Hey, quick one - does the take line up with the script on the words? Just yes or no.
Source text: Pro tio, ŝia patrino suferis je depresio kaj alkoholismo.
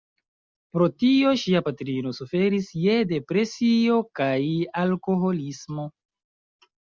yes